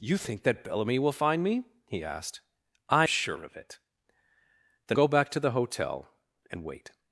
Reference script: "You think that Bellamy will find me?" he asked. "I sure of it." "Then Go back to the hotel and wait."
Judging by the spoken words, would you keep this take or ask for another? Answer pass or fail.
pass